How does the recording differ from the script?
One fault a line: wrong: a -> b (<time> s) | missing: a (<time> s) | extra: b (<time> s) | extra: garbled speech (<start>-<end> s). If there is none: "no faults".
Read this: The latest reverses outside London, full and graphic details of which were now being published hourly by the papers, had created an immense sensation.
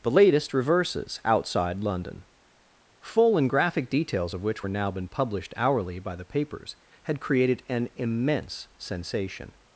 wrong: being -> been (4.9 s)